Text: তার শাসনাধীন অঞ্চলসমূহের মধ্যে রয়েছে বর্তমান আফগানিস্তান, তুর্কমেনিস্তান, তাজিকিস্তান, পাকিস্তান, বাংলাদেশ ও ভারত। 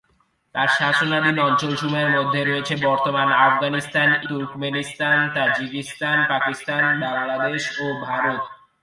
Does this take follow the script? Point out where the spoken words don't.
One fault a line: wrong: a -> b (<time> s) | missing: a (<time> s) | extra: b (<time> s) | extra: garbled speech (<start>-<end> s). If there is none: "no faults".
no faults